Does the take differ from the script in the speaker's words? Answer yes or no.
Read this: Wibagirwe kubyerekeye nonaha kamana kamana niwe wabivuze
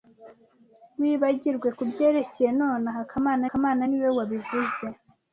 no